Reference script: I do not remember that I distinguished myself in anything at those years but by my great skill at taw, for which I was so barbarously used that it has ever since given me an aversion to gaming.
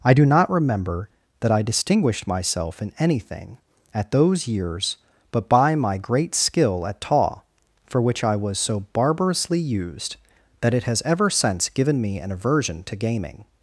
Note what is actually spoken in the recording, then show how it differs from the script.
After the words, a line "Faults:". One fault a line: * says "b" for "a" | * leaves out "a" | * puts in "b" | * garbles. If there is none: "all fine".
I do not remember that I distinguished myself in anything at those years but by my great skill at taw, for which I was so barbarously used that it has ever since given me an aversion to gaming.
Faults:
all fine